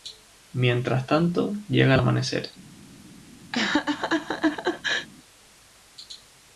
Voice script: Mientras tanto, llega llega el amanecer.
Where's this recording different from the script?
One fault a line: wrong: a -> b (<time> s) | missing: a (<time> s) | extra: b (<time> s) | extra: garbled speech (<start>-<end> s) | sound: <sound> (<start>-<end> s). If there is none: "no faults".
missing: llega (1.9 s)
sound: laugh (3.5-5.1 s)